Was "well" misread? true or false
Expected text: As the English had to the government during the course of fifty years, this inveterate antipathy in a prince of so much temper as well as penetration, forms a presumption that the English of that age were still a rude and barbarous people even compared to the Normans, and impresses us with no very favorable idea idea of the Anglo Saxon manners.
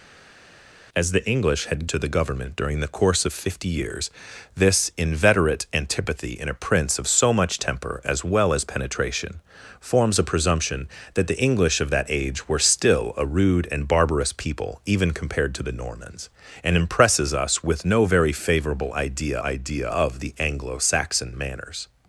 false